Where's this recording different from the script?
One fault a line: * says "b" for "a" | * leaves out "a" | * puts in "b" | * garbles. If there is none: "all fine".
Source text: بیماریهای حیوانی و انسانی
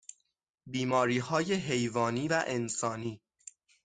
all fine